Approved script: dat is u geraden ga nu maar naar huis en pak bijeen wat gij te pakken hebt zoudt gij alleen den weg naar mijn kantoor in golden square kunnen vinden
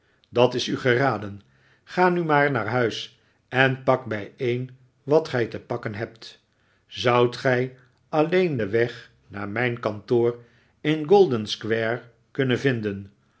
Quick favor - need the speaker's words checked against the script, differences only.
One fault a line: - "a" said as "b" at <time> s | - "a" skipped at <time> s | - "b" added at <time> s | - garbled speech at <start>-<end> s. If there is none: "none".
none